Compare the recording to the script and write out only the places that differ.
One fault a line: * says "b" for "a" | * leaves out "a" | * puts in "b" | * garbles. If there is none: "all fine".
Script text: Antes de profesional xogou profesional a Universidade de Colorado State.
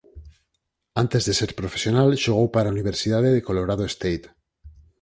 * puts in "ser"
* says "para" for "profesional"